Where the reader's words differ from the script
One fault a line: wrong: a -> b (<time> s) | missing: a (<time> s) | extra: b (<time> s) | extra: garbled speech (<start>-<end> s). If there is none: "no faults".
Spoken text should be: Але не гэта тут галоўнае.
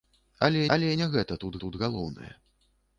extra: але (0.7 s)
extra: тут (1.6 s)